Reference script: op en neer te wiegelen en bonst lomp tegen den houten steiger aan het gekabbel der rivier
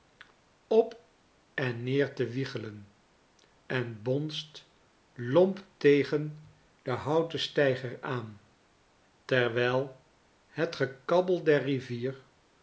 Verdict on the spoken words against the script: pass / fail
fail